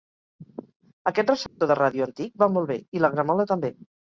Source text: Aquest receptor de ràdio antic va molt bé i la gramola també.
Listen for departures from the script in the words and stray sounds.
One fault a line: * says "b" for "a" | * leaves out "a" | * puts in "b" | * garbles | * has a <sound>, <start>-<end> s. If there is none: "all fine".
* has a dropout, 1.5-1.6 s